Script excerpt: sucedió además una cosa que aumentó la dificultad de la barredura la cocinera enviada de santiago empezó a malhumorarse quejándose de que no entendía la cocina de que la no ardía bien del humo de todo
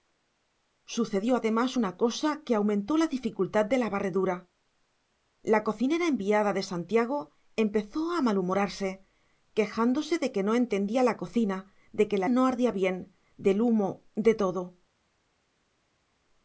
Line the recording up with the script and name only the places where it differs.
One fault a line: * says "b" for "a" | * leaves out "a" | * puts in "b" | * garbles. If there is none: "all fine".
all fine